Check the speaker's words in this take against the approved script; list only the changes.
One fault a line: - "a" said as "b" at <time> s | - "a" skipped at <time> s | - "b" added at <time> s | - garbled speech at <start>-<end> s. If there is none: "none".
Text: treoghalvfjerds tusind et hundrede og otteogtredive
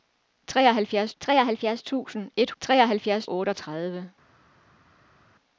- "treoghalvfjerds" added at 1.2 s
- "hundrede" said as "treoghalvfjerds" at 2.6 s